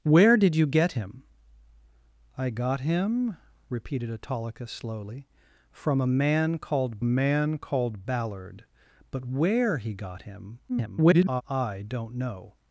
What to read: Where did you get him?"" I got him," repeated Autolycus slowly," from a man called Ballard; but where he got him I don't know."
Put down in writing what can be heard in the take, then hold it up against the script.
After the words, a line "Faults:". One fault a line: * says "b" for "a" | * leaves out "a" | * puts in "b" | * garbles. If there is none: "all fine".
Where did you get him?"" I got him," repeated Autolycus slowly," from a man called man called Ballard; but where he got him [garbled] I don't know."
Faults:
* puts in "man called"
* garbles